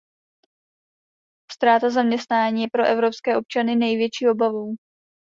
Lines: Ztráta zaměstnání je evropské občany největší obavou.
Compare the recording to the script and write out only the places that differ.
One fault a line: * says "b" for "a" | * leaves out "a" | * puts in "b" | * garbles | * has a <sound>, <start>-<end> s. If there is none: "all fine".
* puts in "pro"